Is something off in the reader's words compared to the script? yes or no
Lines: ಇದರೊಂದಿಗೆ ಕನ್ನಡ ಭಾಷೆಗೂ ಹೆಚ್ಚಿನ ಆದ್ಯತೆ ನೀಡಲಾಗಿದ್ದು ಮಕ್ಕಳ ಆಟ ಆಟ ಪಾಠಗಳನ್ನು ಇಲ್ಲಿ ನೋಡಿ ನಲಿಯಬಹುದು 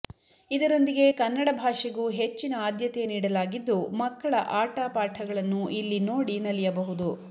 yes